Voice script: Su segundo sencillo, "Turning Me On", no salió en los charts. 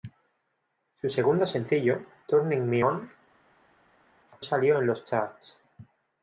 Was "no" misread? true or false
true